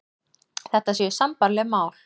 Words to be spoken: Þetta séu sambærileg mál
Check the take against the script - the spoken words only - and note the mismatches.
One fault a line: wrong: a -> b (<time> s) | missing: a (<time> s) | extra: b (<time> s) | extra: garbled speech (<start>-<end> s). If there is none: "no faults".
no faults